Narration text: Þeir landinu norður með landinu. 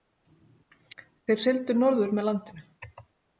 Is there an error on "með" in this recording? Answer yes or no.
no